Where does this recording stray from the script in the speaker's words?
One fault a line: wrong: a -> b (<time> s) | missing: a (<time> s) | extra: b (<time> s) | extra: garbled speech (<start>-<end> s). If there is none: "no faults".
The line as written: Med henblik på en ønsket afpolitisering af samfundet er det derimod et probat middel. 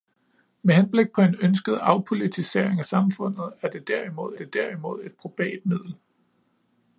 extra: det derimod (4.3 s)